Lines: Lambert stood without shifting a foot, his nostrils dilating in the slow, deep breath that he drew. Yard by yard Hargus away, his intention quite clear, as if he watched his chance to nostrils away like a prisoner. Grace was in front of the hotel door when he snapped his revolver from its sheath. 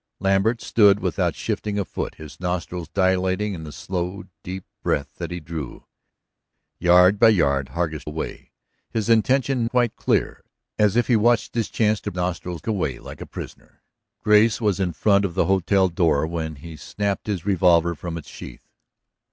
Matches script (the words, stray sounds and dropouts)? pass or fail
pass